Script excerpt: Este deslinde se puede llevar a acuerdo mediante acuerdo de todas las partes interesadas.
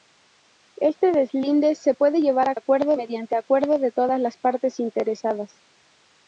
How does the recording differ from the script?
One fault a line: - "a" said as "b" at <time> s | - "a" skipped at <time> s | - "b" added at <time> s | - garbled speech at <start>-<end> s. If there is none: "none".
none